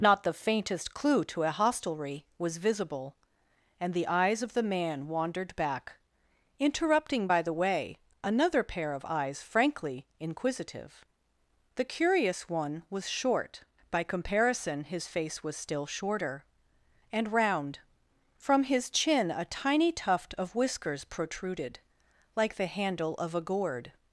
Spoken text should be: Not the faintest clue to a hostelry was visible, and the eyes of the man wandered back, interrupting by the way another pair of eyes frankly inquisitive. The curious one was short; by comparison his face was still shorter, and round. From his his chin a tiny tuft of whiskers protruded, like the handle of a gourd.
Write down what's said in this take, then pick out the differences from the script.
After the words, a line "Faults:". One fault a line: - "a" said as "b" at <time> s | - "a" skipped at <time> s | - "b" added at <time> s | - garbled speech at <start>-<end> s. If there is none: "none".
Not the faintest clue to a hostelry was visible, and the eyes of the man wandered back, interrupting by the way another pair of eyes frankly inquisitive. The curious one was short; by comparison his face was still shorter, and round. From his chin a tiny tuft of whiskers protruded, like the handle of a gourd.
Faults:
- "his" skipped at 18.9 s